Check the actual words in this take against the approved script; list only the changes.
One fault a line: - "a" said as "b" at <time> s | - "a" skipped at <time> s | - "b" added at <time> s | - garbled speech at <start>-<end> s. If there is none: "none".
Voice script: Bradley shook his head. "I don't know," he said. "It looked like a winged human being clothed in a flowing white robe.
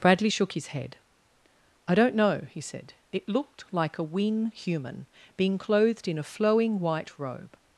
- "winged" said as "wing" at 4.0 s